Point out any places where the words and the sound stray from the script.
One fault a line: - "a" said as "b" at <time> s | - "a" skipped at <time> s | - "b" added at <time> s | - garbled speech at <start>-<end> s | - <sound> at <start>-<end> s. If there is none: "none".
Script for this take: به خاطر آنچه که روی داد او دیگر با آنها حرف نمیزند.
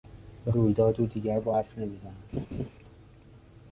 - "خاطر آنچه که" skipped at 0.5 s
- "آنها" skipped at 1.5 s
- laugh at 2.3-2.7 s